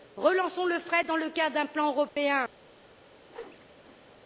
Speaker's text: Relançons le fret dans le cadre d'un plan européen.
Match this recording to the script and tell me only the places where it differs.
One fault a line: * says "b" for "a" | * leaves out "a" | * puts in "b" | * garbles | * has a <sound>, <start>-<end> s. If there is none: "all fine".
* has a dropout, 2.1-2.2 s
* has a whoosh, 3.3-4.1 s